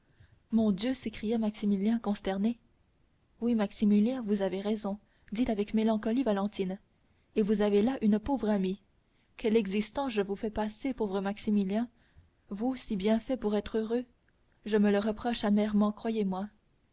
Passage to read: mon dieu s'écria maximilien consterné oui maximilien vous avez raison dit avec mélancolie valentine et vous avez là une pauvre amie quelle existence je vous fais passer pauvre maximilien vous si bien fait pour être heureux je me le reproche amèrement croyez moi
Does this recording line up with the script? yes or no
yes